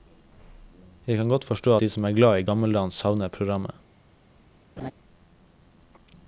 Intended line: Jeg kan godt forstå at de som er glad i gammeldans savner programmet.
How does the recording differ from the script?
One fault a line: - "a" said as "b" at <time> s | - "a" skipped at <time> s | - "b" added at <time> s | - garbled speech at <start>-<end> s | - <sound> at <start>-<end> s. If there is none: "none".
- "at" skipped at 1.8 s
- laugh at 4.8-4.9 s